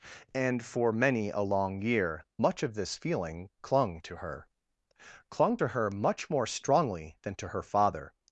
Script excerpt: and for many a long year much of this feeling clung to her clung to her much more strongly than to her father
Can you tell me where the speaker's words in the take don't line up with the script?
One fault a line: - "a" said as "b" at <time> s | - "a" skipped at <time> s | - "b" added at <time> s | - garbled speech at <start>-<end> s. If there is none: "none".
none